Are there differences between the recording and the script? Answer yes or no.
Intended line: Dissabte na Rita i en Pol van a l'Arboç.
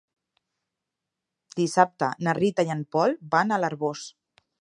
no